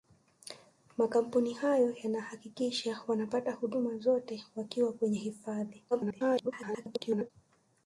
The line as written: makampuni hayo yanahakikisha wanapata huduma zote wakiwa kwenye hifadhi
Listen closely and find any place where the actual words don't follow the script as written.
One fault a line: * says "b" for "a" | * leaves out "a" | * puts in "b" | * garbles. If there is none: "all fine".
* garbles